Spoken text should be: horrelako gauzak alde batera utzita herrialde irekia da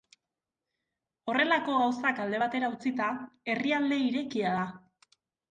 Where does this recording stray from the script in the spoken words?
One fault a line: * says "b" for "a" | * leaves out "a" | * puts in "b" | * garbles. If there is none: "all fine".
all fine